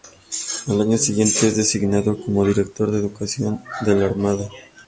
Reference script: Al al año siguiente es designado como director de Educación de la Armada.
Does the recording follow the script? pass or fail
fail